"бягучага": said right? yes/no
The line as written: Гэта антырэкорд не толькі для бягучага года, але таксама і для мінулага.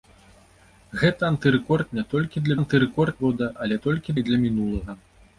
no